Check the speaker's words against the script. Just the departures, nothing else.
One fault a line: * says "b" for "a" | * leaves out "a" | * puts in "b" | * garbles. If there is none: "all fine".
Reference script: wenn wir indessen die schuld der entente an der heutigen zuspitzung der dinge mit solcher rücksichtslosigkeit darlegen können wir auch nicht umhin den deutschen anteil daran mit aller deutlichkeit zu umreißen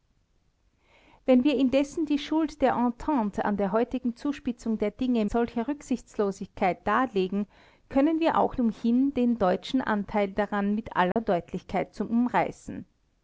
* leaves out "mit"
* leaves out "nicht"